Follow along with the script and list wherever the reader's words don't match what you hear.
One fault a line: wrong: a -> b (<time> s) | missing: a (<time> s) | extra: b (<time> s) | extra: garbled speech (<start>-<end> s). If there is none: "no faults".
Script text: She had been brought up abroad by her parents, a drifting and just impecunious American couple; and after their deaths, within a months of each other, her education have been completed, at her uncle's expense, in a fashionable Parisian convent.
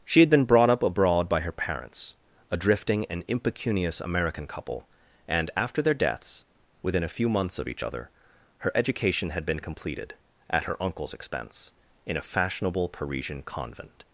missing: just (3.2 s)
extra: few (7.1 s)
wrong: have -> had (9.3 s)